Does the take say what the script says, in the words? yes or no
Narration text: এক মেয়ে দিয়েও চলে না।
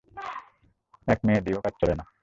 no